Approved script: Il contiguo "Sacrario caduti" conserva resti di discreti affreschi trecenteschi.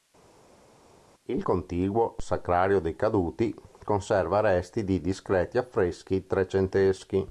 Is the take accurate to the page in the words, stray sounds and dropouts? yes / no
no